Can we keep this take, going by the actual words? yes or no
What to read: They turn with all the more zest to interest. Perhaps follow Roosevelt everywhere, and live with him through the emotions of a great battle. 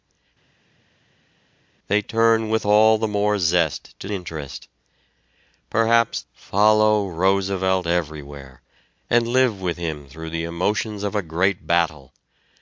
yes